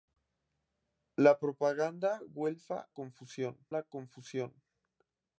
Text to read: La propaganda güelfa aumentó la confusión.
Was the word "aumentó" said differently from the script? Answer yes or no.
yes